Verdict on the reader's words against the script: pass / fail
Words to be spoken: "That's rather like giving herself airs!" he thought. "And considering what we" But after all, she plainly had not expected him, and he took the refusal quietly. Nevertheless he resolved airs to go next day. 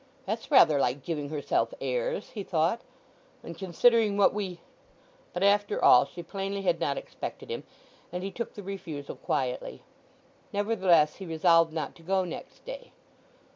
fail